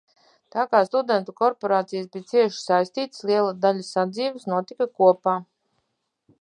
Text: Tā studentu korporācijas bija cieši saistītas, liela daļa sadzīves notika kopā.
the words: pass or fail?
fail